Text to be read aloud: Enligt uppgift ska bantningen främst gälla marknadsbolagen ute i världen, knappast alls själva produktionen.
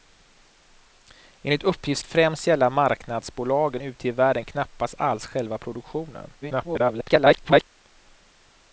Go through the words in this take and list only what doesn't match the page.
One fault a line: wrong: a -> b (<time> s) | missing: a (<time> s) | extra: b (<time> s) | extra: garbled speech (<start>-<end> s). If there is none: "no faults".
missing: ska bantningen (2.0 s)
extra: garbled speech (6.4-7.6 s)